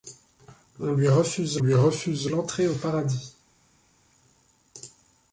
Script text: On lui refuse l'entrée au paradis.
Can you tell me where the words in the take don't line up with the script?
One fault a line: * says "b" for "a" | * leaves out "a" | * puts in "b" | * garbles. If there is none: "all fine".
* puts in "lui refuse"